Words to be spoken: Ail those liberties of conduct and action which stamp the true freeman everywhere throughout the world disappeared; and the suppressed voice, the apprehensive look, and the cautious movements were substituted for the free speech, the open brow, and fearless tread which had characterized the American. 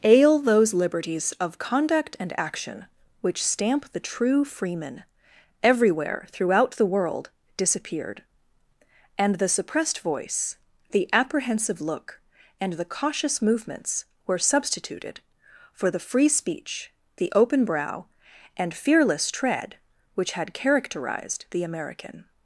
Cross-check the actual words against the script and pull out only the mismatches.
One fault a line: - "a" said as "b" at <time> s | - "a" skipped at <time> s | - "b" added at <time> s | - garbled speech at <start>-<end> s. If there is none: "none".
none